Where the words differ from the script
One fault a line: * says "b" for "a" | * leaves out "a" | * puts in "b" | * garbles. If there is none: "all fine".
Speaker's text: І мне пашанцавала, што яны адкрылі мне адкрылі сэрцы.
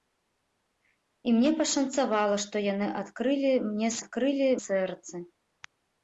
all fine